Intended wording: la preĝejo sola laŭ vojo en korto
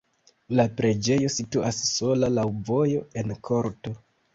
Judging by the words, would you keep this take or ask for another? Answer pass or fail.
fail